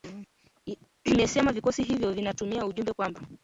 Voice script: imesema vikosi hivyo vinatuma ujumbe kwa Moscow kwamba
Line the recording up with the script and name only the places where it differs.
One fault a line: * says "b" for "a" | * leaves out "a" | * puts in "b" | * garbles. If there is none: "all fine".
* leaves out "kwa Moscow"